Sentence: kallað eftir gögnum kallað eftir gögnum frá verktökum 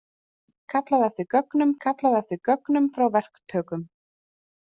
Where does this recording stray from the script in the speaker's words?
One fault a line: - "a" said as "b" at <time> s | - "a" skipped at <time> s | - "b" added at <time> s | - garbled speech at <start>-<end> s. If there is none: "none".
none